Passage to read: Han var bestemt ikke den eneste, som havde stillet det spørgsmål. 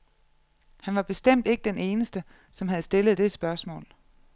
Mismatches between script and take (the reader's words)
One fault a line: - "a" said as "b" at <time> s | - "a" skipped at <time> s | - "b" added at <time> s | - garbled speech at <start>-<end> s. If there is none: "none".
none